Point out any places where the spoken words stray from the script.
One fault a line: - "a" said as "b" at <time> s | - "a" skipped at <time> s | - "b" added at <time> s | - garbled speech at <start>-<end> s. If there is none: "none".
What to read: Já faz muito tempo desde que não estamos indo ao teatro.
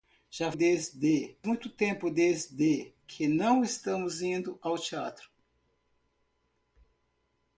- "faz" said as "desde" at 0.5 s